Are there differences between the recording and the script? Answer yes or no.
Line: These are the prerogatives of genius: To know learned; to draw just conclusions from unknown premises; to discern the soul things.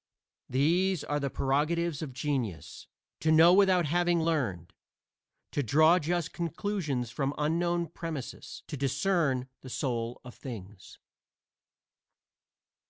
yes